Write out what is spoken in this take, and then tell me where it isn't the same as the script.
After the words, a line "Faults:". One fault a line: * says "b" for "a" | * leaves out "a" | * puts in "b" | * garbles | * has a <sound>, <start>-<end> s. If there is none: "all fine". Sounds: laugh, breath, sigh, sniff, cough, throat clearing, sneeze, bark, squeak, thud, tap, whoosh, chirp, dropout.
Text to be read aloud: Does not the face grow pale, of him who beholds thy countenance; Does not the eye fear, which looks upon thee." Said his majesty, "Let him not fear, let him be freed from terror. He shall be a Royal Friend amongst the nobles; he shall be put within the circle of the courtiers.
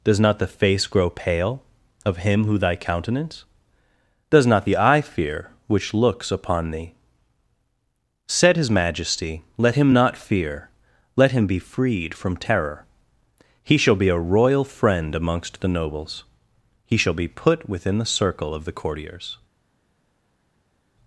Does not the face grow pale, of him who thy countenance; Does not the eye fear, which looks upon thee." Said his majesty, "Let him not fear, let him be freed from terror. He shall be a Royal Friend amongst the nobles; he shall be put within the circle of the courtiers.
Faults:
* leaves out "beholds"